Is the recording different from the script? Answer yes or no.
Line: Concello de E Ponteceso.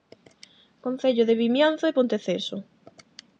yes